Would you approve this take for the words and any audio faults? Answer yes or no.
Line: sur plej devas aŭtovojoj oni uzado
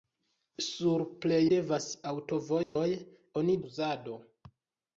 no